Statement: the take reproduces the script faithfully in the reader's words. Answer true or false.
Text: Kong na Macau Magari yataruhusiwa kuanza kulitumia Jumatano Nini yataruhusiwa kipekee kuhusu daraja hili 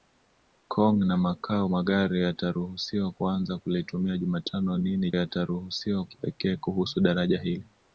true